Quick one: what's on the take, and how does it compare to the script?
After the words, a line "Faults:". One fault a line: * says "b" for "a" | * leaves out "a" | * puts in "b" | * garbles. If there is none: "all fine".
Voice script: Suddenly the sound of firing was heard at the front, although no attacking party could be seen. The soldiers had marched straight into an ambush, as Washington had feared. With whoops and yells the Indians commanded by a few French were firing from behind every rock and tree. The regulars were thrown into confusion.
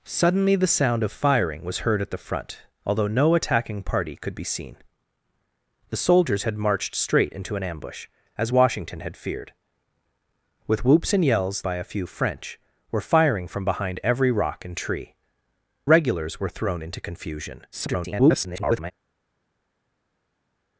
Suddenly the sound of firing was heard at the front, although no attacking party could be seen. The soldiers had marched straight into an ambush, as Washington had feared. With whoops and yells by a few French were firing from behind every rock and tree. Regulars were thrown into confusion. [garbled]
Faults:
* leaves out "the Indians commanded"
* leaves out "The"
* garbles